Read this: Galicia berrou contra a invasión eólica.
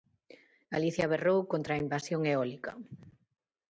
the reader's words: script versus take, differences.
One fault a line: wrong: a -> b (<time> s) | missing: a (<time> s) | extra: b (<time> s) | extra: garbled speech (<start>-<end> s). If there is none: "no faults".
no faults